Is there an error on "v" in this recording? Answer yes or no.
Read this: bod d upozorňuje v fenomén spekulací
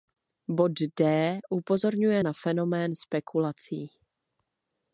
yes